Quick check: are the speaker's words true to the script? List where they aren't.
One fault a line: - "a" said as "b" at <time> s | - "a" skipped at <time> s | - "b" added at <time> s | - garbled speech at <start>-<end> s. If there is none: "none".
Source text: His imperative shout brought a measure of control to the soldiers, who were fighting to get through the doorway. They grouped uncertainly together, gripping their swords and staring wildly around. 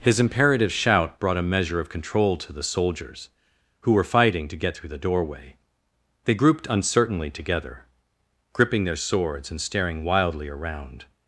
none